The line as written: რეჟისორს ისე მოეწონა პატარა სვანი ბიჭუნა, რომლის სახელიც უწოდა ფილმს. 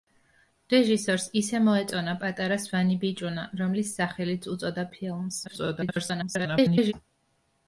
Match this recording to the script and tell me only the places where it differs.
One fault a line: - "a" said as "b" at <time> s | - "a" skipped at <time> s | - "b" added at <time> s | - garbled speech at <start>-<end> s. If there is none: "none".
- garbled speech at 5.5-6.9 s